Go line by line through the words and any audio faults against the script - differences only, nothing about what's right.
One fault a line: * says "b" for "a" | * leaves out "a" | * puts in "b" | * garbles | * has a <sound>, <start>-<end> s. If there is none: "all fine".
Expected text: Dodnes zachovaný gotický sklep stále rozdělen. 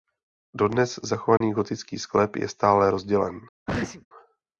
* has a dropout, 1.4-1.4 s
* puts in "je"
* has a sneeze, 3.7-4.1 s